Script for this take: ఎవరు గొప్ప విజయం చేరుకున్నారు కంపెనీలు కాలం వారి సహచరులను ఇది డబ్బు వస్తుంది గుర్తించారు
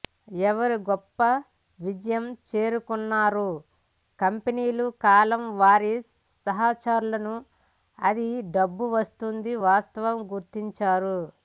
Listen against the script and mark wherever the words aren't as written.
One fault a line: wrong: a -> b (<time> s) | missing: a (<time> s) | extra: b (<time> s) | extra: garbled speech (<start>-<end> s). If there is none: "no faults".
wrong: ఇది -> అది (8.0 s)
extra: వాస్తవం (9.7 s)